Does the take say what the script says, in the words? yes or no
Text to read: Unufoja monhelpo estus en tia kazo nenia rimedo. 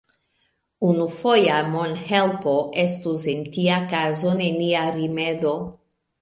yes